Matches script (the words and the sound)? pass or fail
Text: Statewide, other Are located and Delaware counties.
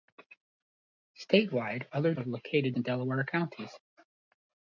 pass